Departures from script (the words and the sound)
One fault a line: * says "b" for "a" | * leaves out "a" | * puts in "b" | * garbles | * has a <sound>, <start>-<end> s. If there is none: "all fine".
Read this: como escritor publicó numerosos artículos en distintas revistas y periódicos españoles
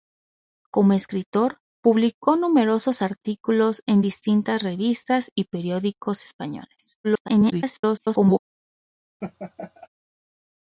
* garbles
* has a laugh, 9.2-9.9 s